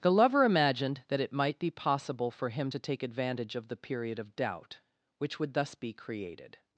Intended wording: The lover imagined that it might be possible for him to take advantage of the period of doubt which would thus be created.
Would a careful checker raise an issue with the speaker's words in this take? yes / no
no